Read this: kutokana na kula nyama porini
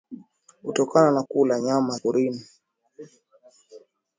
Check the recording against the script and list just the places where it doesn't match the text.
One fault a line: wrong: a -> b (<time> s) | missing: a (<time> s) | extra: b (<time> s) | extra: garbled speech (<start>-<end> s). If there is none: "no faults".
no faults